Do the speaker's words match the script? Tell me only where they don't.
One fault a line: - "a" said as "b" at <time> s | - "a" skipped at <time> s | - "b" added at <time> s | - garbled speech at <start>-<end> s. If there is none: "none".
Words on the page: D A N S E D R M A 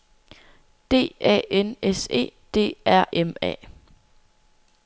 none